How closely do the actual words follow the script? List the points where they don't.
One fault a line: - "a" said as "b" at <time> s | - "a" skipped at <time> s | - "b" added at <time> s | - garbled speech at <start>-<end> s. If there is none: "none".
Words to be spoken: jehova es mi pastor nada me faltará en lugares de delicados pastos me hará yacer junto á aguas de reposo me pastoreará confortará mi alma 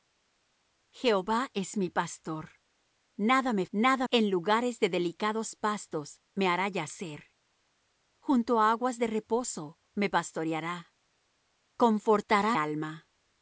- "faltará" said as "nada" at 3.7 s
- "mi" skipped at 12.6 s